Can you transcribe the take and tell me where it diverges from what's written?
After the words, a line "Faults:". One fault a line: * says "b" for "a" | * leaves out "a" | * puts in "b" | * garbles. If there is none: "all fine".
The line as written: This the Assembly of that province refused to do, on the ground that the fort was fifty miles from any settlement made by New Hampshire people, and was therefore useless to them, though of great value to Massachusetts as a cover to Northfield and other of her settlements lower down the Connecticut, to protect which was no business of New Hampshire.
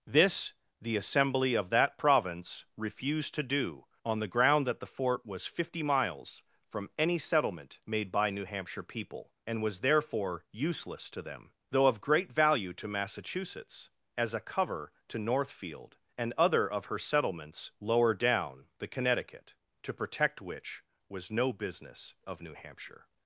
This the Assembly of that province refused to do, on the ground that the fort was fifty miles from any settlement made by New Hampshire people, and was therefore useless to them, though of great value to Massachusetts as a cover to Northfield and other of her settlements lower down the Connecticut, to protect which was no business of New Hampshire.
Faults:
all fine